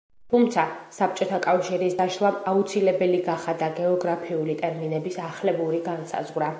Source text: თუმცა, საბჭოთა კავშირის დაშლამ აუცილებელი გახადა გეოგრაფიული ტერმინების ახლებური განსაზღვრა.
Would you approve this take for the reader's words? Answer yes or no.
yes